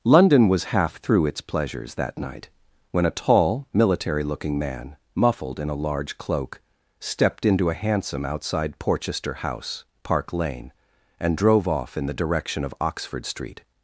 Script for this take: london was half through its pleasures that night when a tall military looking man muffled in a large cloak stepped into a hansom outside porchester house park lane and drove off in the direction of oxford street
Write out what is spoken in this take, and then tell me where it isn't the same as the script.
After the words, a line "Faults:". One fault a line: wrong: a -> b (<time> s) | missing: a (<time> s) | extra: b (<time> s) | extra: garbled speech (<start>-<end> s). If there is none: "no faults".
london was half through its pleasures that night when a tall military looking man muffled in a large cloak stepped into a hansom outside porchester house park lane and drove off in the direction of oxford street
Faults:
no faults